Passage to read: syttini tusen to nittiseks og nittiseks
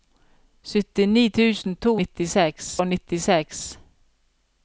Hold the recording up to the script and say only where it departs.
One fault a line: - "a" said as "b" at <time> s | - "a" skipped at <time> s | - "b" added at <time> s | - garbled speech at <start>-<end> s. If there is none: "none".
none